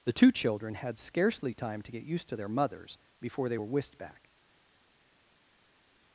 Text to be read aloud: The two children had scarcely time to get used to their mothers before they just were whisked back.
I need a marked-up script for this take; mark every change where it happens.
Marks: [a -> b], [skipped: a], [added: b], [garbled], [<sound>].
The two children had scarcely time to get used to their mothers before they [skipped: just] were whisked back.